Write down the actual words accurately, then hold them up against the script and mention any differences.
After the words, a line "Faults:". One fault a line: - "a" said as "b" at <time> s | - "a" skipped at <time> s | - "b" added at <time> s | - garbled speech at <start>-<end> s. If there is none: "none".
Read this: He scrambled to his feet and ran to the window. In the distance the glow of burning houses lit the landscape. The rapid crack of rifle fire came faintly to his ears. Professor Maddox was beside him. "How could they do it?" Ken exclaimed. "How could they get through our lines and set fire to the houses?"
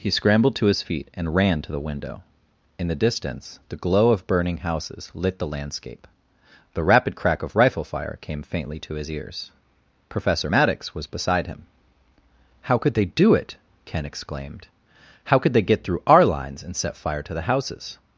He scrambled to his feet and ran to the window. In the distance the glow of burning houses lit the landscape. The rapid crack of rifle fire came faintly to his ears. Professor Maddox was beside him. "How could they do it?" Ken exclaimed. "How could they get through our lines and set fire to the houses?"
Faults:
none